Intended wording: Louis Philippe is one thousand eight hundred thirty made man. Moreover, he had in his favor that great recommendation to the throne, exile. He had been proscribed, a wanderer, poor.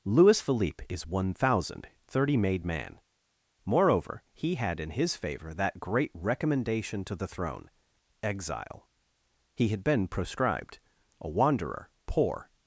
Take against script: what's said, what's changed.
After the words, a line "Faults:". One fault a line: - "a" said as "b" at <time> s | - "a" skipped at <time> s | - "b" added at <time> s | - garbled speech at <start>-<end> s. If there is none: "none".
Louis Philippe is one thousand thirty made man. Moreover, he had in his favor that great recommendation to the throne, exile. He had been proscribed, a wanderer, poor.
Faults:
- "eight hundred" skipped at 1.9 s